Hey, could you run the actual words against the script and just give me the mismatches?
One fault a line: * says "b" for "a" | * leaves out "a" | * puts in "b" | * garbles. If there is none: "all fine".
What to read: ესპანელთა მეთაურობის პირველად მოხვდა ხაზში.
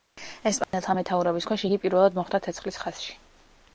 * puts in "ქვეშ იგი"
* puts in "ცეცხლის"